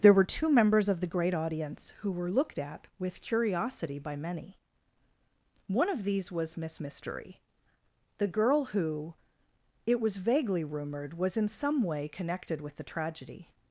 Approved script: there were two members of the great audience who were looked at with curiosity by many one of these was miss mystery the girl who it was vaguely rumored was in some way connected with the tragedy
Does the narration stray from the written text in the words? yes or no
no